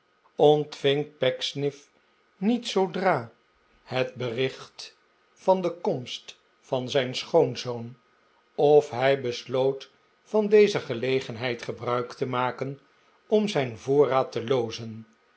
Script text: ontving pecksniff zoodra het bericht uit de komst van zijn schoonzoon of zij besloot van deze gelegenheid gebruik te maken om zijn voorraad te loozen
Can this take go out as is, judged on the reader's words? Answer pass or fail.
fail